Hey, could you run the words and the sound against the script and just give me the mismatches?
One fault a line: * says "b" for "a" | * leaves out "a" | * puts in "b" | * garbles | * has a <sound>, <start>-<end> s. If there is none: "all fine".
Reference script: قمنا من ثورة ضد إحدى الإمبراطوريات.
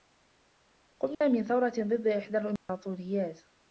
* has a dropout, 1.1-1.2 s
* has a dropout, 2.6-2.7 s